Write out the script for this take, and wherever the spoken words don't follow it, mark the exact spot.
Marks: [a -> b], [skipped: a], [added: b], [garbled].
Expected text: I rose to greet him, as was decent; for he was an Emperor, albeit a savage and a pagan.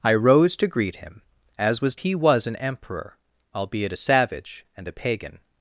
I rose to greet him, as was [skipped: decent; for] he was an Emperor, albeit a savage and a pagan.